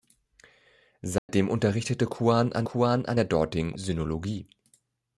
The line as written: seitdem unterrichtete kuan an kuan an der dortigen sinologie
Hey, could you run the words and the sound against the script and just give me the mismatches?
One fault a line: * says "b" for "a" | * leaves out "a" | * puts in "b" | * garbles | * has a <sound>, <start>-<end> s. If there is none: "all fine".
* has a dropout, 1.2-1.3 s